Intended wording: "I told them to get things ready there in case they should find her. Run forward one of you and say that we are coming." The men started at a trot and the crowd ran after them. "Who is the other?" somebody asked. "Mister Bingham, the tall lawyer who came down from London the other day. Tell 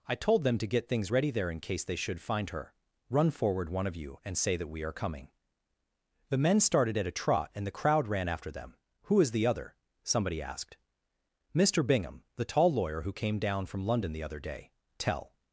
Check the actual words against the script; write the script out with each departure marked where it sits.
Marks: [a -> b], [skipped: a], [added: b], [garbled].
"I told them to get things ready there in case they should find her. Run forward one of you and say that we are coming." The men started at a trot and the crowd ran after them. "Who is the other?" somebody asked. "Mister Bingham, the tall lawyer who came down from London the other day. Tell